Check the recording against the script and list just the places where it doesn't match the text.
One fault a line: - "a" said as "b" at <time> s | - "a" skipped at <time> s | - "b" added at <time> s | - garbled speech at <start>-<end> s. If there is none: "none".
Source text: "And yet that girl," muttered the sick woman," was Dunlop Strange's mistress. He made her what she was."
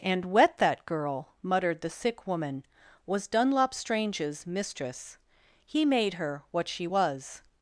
- "yet" said as "wet" at 0.2 s